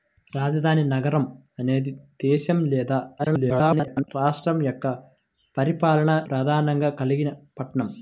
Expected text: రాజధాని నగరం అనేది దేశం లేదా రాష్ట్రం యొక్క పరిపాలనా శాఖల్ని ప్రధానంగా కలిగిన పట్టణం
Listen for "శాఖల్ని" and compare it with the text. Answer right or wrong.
wrong